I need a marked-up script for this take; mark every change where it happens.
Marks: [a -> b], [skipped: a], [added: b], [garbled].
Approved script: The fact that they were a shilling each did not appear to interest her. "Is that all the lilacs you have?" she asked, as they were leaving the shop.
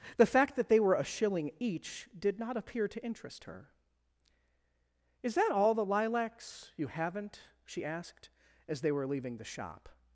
The fact that they were a shilling each did not appear to interest her. "Is that all the lilacs you [have?" -> haven't] she asked, as they were leaving the shop.